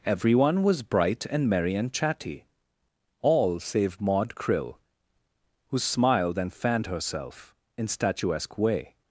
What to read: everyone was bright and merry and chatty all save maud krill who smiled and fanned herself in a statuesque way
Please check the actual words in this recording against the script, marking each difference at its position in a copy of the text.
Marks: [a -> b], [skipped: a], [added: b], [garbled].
everyone was bright and merry and chatty all save maud krill who smiled and fanned herself in [skipped: a] statuesque way